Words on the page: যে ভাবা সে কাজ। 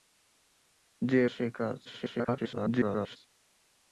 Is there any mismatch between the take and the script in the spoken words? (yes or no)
yes